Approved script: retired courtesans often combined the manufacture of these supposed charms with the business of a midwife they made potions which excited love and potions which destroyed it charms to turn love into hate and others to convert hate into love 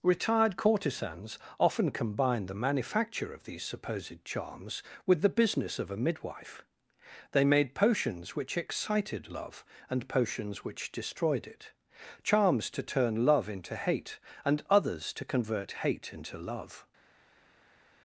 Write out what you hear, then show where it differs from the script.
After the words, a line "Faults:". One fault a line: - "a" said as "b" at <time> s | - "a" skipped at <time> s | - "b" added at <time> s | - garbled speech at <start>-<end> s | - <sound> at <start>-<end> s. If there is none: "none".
retired courtesans often combined the manufacture of these supposed charms with the business of a midwife they made potions which excited love and potions which destroyed it charms to turn love into hate and others to convert hate into love
Faults:
none